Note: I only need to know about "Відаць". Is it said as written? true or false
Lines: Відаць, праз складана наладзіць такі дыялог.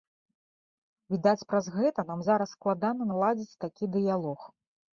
true